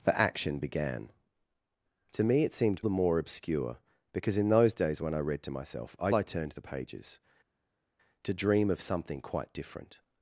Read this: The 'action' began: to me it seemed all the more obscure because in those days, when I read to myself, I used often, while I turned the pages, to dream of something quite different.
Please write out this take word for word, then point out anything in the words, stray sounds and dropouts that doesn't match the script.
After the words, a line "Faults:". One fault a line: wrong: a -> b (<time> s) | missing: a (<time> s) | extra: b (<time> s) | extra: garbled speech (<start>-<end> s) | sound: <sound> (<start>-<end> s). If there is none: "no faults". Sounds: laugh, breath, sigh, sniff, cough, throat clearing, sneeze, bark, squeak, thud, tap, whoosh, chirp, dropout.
The 'action' began: to me it seemed the more obscure because in those days, when I read to myself, I I turned the pages, to dream of something quite different.
Faults:
missing: all (2.8 s)
missing: used often while (6.1 s)